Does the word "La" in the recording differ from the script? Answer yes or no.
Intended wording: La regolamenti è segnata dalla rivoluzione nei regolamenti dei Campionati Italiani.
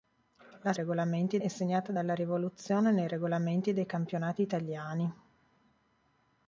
no